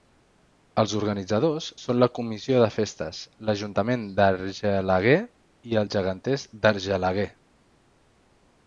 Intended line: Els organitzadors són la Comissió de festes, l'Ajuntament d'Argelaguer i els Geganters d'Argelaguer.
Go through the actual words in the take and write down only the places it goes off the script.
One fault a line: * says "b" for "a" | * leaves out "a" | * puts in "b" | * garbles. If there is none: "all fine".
all fine